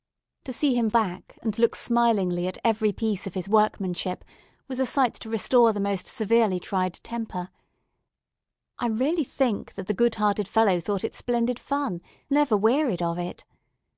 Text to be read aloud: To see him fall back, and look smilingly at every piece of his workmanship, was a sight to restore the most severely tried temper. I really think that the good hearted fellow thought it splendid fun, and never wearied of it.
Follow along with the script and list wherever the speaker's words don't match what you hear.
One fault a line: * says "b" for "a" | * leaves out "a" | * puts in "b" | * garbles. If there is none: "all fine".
* leaves out "fall"
* leaves out "and"